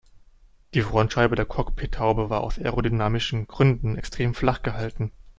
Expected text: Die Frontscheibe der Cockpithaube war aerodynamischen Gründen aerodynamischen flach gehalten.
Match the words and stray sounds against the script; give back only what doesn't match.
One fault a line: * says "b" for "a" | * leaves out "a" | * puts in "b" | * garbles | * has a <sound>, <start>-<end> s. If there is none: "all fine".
* puts in "aus"
* says "extrem" for "aerodynamischen"